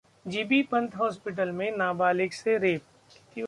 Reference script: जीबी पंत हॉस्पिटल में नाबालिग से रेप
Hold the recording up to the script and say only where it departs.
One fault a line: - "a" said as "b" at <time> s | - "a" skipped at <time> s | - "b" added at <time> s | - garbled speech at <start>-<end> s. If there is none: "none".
none